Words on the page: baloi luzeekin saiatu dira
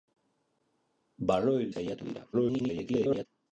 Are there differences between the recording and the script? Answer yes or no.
yes